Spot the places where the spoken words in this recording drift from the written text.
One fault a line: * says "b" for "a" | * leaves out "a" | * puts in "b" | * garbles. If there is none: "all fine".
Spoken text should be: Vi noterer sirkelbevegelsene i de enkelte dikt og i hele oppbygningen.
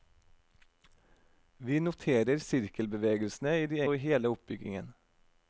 * leaves out "enkelte dikt"